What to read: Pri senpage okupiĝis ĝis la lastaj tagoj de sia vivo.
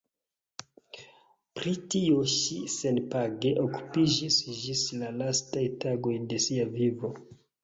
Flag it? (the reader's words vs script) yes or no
yes